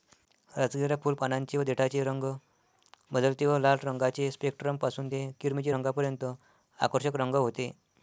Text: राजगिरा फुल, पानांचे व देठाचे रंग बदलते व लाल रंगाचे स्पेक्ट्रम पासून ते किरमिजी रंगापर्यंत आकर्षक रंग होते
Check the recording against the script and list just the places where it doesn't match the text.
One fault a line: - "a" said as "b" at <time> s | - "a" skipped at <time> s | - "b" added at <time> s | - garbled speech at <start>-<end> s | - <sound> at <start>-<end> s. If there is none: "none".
none